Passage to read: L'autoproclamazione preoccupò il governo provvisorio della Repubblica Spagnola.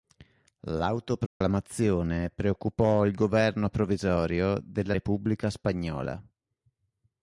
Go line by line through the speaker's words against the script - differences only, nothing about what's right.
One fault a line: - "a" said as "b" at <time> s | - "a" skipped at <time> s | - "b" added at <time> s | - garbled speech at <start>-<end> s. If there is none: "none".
none